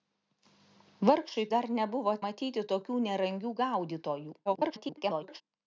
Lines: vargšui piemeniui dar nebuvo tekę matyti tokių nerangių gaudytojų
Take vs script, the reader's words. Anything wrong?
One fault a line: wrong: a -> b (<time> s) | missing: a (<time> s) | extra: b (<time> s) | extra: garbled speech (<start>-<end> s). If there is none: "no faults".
missing: piemeniui (1.4 s)
missing: tekę (2.2 s)
extra: garbled speech (4.5-5.4 s)